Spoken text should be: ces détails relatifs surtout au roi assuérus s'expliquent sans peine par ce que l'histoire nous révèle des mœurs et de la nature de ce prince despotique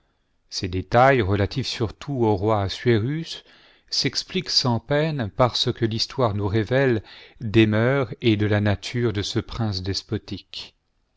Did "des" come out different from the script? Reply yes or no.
no